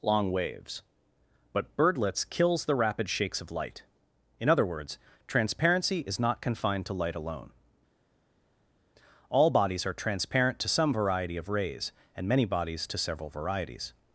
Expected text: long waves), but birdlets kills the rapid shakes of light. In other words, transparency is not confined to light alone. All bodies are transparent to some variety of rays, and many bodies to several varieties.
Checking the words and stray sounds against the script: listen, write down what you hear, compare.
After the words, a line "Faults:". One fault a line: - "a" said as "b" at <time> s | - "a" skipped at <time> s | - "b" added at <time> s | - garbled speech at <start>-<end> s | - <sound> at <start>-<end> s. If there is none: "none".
long waves), but birdlets kills the rapid shakes of light. In other words, transparency is not confined to light alone. All bodies are transparent to some variety of rays, and many bodies to several varieties.
Faults:
none